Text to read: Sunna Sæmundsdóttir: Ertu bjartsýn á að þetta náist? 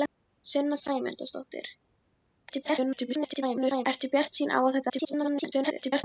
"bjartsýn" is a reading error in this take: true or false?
false